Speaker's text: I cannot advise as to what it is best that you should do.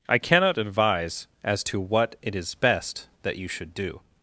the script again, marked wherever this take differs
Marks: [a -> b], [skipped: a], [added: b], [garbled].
I cannot advise as to what it is best that you should do.